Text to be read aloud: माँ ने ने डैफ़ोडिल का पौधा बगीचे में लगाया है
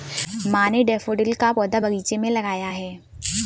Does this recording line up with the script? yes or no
no